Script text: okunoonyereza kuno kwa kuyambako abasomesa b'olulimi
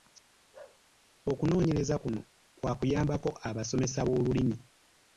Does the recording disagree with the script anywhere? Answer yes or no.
no